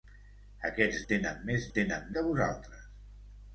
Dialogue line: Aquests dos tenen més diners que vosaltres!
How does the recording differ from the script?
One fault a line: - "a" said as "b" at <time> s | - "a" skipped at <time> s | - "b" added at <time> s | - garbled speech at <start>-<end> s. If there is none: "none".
- "dos" skipped at 1.0 s
- "diners" said as "tenen" at 1.8 s